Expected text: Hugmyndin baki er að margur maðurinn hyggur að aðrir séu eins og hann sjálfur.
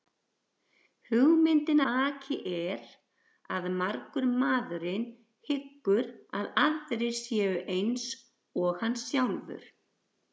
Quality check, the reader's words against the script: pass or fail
pass